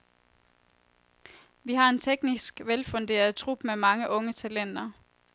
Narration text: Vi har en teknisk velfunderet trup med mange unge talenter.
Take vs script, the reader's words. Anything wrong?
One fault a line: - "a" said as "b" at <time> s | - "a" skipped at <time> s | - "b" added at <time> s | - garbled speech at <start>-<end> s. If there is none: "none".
none